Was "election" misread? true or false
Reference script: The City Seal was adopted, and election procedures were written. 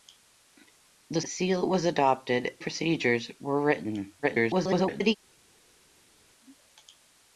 true